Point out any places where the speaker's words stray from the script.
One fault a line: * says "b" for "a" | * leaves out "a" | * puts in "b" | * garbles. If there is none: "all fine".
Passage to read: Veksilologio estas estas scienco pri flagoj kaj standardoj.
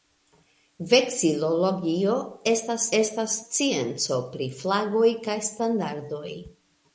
all fine